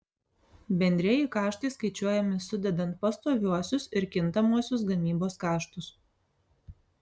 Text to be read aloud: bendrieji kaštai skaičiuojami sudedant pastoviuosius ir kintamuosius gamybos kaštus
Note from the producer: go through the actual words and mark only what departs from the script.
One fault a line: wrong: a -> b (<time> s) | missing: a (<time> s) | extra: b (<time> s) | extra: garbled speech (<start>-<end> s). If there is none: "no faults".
no faults